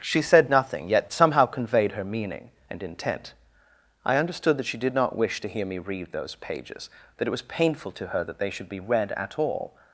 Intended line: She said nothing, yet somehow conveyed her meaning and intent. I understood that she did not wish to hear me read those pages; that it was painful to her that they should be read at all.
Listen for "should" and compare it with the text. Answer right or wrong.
right